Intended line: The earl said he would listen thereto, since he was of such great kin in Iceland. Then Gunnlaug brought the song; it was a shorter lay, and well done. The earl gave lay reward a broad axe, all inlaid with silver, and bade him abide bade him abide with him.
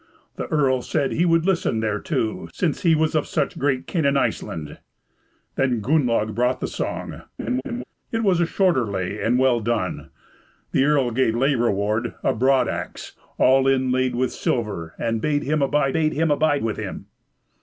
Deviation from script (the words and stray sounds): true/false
true